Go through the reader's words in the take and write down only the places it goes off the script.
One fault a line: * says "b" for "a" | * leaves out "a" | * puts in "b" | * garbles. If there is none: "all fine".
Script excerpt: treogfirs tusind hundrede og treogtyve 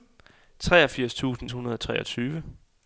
all fine